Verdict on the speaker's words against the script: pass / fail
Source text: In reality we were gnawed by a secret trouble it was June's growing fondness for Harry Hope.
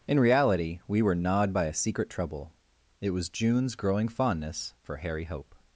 pass